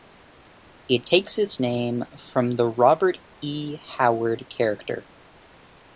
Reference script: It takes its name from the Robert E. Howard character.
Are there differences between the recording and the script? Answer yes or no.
no